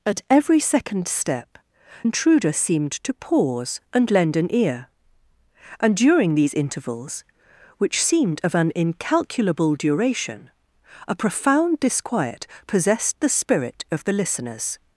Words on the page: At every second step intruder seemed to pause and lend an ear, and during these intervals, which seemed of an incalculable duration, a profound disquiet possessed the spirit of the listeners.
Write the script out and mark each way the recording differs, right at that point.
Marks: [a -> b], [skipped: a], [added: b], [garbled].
At every second step intruder seemed to pause and lend an ear, and during these intervals, which seemed of an incalculable duration, a profound disquiet possessed the spirit of the listeners.